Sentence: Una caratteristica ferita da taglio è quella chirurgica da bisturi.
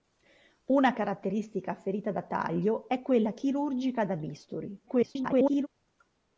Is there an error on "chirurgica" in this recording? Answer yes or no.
no